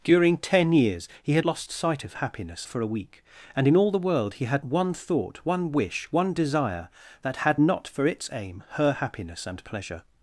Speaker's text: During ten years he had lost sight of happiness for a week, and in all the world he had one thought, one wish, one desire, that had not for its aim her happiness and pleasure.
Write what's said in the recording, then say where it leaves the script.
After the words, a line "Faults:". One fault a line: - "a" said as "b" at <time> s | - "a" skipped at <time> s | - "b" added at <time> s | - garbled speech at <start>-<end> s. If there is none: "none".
During ten years he had lost sight of happiness for a week, and in all the world he had one thought, one wish, one desire, that had not for its aim her happiness and pleasure.
Faults:
none